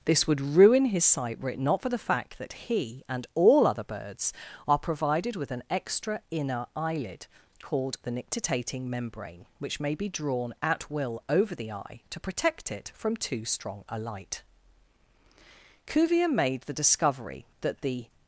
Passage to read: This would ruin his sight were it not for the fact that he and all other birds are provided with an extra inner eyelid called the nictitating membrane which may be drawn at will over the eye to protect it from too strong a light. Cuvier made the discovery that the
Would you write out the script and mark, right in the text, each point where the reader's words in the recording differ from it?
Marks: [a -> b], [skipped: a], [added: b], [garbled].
This would ruin his sight were it not for the fact that he and all other birds are provided with an extra inner eyelid called the nictitating membrane which may be drawn at will over the eye to protect it from too strong a light. Cuvier made the discovery that the